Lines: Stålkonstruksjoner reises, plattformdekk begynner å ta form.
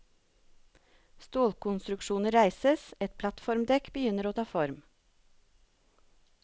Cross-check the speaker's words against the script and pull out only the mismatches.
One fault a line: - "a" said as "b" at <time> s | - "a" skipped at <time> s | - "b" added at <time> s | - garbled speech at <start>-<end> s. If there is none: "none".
- "et" added at 3.1 s